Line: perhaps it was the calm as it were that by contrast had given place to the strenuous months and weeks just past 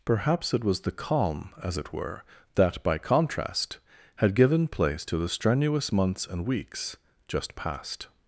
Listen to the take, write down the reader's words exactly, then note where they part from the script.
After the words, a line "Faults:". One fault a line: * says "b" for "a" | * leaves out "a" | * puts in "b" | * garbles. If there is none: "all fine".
perhaps it was the calm as it were that by contrast had given place to the strenuous months and weeks just past
Faults:
all fine